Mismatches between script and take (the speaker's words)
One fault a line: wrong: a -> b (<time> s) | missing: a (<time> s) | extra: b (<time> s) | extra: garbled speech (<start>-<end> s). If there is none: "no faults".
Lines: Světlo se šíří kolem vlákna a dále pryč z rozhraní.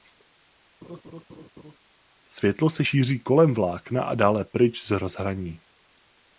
no faults